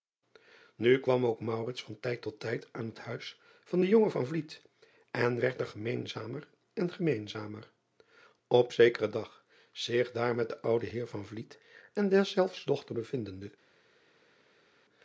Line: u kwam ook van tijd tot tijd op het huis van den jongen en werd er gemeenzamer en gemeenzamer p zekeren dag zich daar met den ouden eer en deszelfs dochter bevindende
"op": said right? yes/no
no